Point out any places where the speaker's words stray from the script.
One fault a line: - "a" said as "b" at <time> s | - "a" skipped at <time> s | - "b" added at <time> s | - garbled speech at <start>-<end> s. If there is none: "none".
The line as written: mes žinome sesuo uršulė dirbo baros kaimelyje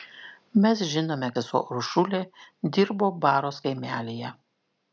none